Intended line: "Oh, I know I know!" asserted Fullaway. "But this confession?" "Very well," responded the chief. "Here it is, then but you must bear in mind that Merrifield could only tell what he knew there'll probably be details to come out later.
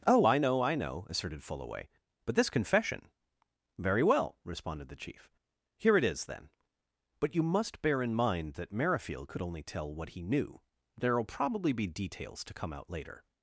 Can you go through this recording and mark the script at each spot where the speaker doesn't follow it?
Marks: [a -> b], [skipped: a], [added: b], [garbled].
"Oh, I know I know!" asserted Fullaway. "But this confession?" "Very well," responded the chief. "Here it is, then but you must bear in mind that Merrifield could only tell what he knew there'll probably be details to come out later.